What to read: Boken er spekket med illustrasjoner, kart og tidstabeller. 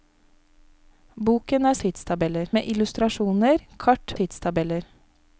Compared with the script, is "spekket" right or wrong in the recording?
wrong